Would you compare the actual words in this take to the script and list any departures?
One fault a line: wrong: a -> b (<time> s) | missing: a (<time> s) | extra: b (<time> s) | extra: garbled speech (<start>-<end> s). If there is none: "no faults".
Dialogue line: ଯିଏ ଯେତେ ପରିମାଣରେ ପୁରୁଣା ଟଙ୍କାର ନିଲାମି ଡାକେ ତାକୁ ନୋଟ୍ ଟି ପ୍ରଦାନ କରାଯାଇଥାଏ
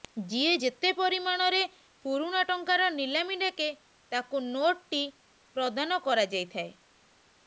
no faults